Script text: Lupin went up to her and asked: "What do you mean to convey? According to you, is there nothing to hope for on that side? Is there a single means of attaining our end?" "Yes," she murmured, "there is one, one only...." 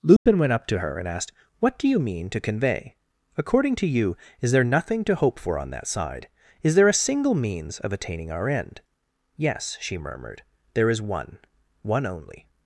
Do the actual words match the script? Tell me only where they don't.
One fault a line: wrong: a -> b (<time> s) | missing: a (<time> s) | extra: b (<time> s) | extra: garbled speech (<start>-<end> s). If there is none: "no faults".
no faults